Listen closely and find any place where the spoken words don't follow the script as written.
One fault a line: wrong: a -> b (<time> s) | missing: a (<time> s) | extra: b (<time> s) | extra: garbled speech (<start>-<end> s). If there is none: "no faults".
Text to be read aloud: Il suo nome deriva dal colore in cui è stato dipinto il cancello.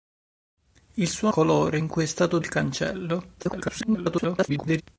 missing: nome deriva dal (1.3 s)
missing: dipinto (2.4 s)
extra: garbled speech (3.4-4.8 s)